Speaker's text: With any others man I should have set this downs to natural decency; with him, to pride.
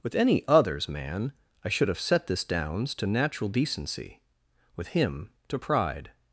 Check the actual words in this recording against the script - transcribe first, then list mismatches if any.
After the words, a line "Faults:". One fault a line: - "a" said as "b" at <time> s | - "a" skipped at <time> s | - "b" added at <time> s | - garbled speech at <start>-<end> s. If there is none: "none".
With any others man I should have set this downs to natural decency; with him, to pride.
Faults:
none